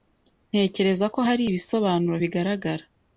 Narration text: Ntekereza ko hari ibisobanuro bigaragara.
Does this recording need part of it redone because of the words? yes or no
no